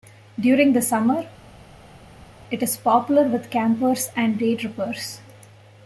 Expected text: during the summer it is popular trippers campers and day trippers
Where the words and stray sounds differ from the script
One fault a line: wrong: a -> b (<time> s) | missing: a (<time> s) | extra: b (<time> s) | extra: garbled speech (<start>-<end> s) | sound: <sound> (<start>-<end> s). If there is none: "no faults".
wrong: trippers -> with (3.2 s)